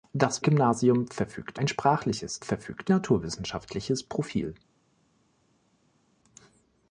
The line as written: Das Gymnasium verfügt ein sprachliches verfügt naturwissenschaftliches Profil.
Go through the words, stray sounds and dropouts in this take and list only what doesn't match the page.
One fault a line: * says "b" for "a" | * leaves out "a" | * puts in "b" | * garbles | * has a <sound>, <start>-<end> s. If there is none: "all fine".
all fine